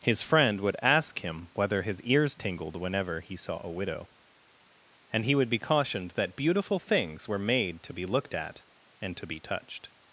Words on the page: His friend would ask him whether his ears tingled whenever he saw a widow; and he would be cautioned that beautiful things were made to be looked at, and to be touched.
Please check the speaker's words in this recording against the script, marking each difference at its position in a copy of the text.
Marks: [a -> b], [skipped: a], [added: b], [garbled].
His friend would ask him whether his ears tingled whenever he saw a widow; and he would be cautioned that beautiful things were made to be looked at, and to be touched.